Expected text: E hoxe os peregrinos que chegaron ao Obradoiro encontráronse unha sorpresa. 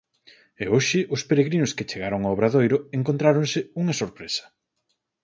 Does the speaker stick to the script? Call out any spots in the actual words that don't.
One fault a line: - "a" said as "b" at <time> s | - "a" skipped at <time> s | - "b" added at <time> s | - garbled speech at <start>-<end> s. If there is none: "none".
none